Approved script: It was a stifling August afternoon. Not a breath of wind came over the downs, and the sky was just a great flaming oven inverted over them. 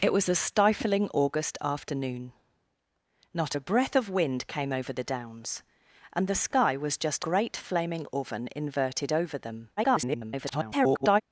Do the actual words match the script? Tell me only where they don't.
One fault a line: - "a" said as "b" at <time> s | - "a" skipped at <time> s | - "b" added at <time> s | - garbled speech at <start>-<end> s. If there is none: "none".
- "a" skipped at 7.2 s
- garbled speech at 9.8-11.2 s